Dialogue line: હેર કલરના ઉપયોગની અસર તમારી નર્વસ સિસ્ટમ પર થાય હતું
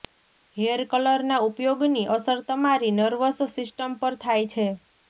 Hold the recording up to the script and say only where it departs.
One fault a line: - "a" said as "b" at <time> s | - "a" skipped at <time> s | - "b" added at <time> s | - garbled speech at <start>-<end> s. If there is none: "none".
- "હતું" said as "છે" at 4.5 s